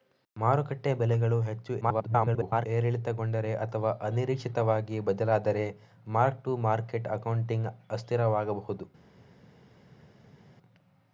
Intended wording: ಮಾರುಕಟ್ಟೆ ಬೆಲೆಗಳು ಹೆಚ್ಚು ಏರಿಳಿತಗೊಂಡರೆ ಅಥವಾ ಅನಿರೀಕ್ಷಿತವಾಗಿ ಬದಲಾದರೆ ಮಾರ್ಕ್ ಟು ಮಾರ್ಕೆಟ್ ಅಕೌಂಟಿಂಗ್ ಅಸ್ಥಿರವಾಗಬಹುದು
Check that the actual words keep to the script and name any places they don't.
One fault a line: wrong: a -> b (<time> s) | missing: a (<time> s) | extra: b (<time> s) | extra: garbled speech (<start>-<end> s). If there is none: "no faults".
extra: garbled speech (1.8-2.7 s)